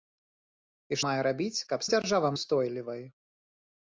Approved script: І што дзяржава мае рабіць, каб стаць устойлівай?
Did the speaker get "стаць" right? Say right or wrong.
wrong